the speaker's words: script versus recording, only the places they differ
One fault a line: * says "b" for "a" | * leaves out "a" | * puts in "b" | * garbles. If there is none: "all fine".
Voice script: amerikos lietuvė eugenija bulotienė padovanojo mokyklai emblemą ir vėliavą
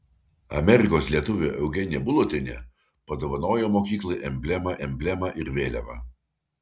* puts in "emblemą"